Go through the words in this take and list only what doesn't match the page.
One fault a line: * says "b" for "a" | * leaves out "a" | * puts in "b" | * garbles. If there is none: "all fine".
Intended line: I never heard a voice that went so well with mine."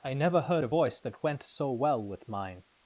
all fine